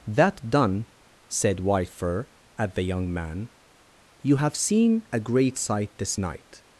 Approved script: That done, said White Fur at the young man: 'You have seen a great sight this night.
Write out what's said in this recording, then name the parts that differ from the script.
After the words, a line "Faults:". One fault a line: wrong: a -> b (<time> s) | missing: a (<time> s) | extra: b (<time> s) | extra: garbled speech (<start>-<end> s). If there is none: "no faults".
That done, said White Fur at the young man: 'You have seen a great sight this night.
Faults:
no faults